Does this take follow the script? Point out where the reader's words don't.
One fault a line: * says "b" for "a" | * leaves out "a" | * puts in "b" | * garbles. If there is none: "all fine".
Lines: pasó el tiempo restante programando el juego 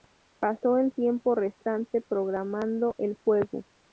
all fine